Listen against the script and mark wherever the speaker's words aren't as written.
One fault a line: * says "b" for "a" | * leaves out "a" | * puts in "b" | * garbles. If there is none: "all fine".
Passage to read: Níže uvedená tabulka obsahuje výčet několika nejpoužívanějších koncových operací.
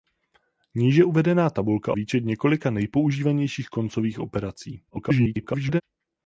* leaves out "obsahuje"
* garbles